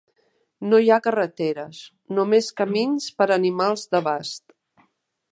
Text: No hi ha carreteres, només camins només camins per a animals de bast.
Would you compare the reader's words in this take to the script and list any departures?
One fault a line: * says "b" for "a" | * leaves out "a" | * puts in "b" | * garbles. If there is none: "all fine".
* leaves out "només camins"